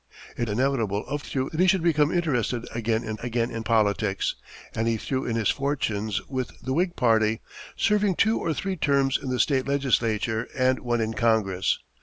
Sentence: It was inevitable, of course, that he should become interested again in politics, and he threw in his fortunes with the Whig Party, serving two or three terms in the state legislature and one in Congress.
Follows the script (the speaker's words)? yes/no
no